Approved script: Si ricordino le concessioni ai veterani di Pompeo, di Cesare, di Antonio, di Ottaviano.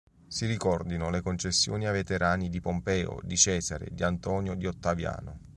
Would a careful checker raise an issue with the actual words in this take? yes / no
no